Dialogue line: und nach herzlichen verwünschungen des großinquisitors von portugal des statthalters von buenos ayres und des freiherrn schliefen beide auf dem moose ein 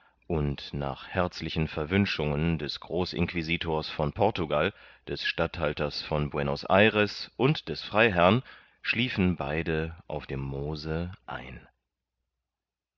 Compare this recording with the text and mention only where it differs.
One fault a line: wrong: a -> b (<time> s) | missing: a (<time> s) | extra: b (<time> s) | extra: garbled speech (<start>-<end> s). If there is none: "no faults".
no faults